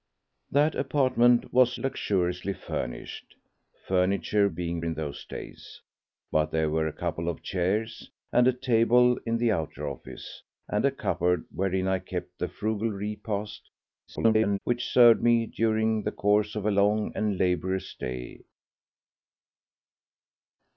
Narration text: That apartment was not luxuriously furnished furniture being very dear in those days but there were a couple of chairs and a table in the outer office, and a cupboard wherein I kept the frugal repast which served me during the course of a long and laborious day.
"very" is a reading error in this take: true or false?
true